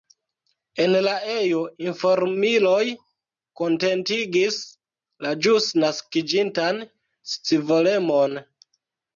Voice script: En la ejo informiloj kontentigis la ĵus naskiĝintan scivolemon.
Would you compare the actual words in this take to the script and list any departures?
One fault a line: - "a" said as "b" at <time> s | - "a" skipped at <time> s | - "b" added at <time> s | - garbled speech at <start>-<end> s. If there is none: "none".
none